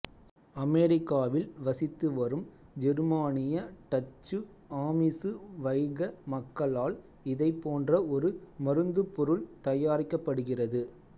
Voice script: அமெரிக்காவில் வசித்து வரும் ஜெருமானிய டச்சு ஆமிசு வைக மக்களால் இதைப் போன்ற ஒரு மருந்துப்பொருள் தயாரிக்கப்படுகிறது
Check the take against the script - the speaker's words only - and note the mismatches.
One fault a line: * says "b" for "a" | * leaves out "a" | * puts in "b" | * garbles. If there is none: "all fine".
all fine